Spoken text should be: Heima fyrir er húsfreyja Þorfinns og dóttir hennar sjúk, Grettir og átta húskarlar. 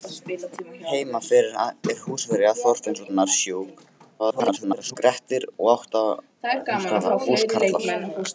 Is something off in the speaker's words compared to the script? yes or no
yes